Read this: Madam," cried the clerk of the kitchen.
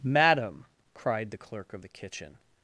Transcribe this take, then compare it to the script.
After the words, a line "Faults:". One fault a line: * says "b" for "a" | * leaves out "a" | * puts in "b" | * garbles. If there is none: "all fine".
Madam," cried the clerk of the kitchen.
Faults:
all fine